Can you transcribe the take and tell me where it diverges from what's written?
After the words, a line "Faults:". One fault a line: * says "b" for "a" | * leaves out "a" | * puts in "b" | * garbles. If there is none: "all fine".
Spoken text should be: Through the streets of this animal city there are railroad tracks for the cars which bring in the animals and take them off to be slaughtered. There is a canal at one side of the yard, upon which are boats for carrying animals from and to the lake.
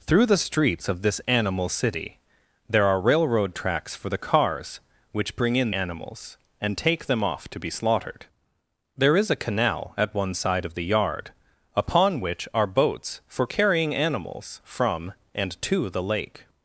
Through the streets of this animal city there are railroad tracks for the cars which bring in animals and take them off to be slaughtered. There is a canal at one side of the yard, upon which are boats for carrying animals from and to the lake.
Faults:
* leaves out "the"